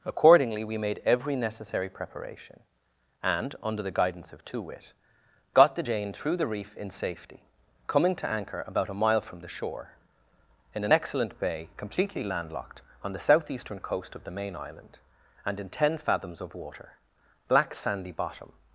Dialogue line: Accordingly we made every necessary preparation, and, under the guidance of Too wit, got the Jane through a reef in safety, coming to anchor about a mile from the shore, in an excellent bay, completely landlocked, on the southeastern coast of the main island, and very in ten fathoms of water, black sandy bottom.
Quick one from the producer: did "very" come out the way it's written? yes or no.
no